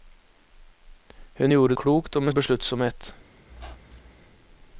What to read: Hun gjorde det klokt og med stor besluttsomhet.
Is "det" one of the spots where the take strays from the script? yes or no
yes